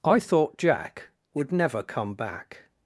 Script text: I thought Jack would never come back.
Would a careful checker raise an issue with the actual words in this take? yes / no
no